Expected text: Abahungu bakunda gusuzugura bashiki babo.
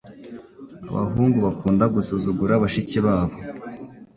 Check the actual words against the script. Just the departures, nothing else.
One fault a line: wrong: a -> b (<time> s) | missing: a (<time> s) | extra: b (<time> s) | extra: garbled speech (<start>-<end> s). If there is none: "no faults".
no faults